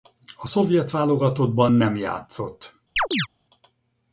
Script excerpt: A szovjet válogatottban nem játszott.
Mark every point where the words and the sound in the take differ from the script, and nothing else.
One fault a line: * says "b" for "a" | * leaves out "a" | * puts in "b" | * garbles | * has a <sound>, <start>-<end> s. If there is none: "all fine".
* has a chirp, 3.0-3.3 s